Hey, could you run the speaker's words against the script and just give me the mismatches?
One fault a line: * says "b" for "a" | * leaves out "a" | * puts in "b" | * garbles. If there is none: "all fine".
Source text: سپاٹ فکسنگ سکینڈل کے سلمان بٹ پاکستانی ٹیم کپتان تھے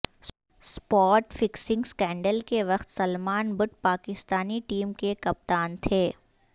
* puts in "وقت"
* puts in "کے"